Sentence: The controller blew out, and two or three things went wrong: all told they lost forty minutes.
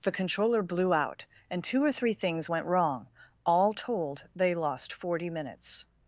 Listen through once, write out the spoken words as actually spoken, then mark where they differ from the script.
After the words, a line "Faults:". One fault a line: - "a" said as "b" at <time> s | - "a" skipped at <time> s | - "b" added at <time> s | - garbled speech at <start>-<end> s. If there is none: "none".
The controller blew out, and two or three things went wrong: all told they lost forty minutes.
Faults:
none